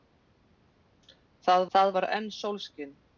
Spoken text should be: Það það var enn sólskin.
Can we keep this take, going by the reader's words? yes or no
yes